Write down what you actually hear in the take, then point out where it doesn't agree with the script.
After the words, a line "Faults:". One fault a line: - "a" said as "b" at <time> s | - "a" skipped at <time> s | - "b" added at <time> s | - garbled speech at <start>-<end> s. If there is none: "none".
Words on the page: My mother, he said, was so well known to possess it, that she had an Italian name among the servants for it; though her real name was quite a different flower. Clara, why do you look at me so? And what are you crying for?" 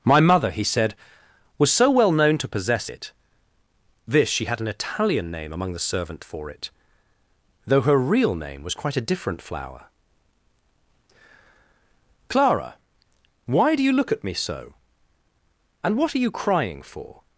My mother, he said, was so well known to possess it, this she had an Italian name among the servant for it; though her real name was quite a different flower. Clara, why do you look at me so? And what are you crying for?"
Faults:
- "that" said as "this" at 4.1 s
- "servants" said as "servant" at 5.8 s